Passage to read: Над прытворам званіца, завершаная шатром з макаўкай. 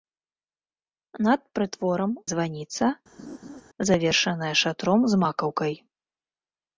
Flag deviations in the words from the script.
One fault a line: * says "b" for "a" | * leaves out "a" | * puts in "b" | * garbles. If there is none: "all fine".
all fine